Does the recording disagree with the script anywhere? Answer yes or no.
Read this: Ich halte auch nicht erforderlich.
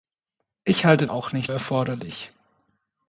no